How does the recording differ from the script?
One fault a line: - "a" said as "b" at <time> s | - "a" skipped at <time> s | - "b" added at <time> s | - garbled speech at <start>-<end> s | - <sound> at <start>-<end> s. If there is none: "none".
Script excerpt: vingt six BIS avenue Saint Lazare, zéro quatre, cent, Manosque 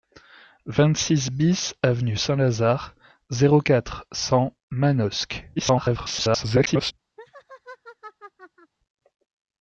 - garbled speech at 5.6-6.9 s
- laugh at 7.2-8.7 s